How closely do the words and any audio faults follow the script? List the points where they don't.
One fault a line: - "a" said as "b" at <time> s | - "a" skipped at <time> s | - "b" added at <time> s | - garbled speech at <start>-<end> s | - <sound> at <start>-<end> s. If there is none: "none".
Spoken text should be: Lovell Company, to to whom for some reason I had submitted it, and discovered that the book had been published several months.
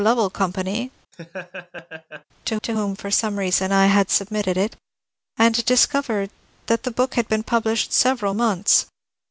- laugh at 1.1-2.2 s